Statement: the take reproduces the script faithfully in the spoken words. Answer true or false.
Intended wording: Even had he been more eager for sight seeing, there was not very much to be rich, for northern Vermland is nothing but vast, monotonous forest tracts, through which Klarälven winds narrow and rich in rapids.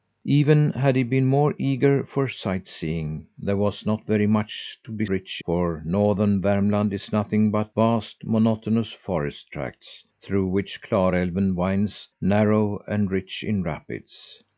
true